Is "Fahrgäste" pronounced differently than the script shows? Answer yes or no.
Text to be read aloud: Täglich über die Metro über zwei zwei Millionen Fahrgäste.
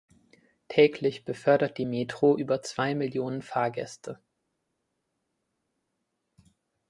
no